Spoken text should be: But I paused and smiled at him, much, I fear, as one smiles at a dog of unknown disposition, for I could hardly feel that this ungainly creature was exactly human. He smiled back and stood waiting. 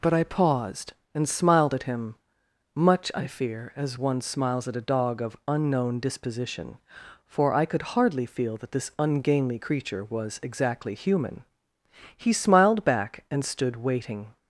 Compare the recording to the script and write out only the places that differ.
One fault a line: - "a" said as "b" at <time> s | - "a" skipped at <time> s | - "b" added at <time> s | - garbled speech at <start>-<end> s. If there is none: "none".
none